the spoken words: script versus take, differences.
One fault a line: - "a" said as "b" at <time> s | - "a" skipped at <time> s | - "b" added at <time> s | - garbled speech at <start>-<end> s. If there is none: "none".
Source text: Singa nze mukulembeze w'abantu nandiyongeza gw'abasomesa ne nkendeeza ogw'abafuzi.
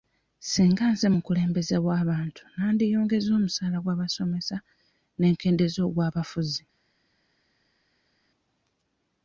- "omusaala" added at 3.4 s